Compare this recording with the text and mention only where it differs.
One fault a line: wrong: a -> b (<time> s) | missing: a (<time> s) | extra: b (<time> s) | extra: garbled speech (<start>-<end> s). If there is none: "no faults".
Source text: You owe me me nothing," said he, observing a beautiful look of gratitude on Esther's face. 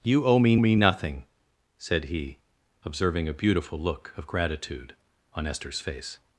no faults